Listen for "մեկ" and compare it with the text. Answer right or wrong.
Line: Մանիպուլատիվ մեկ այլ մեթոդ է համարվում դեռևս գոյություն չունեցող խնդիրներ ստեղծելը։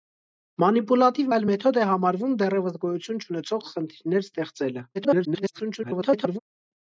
wrong